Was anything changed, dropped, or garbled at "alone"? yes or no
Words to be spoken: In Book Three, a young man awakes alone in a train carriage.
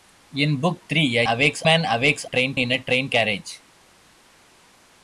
yes